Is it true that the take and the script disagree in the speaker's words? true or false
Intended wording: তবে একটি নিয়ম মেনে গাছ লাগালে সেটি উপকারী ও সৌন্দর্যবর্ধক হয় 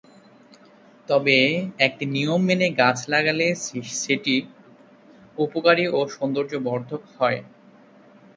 false